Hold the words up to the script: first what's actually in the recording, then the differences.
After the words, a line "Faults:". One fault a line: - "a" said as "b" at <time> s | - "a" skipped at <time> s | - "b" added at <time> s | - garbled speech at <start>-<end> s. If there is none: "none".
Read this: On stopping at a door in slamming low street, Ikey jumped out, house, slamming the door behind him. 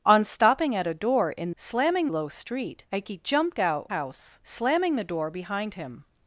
On stopping at a door in slamming low street, Ikey jumped out, house, slamming the door behind him.
Faults:
none